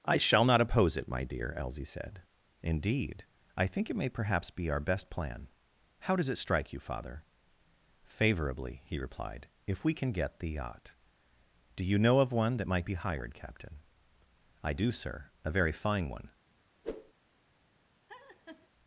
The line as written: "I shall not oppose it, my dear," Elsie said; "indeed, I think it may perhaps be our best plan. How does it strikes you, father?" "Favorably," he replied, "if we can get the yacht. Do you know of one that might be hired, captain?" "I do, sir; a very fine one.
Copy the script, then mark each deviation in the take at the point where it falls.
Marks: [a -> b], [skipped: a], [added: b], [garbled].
"I shall not oppose it, my dear," Elsie said; "indeed, I think it may perhaps be our best plan. How does it [strikes -> strike] you, father?" "Favorably," he replied, "if we can get the yacht. Do you know of one that might be hired, captain?" "I do, sir; a very fine one.